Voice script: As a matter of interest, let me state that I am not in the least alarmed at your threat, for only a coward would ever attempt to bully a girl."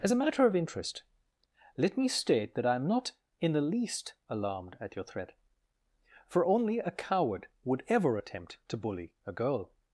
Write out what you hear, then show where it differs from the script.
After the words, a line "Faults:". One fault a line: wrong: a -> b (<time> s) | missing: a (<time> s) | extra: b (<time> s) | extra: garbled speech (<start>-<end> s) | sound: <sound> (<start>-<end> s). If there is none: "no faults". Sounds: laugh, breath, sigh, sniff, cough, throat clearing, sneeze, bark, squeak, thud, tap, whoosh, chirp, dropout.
As a matter of interest, let me state that I am not in the least alarmed at your threat, for only a coward would ever attempt to bully a girl."
Faults:
no faults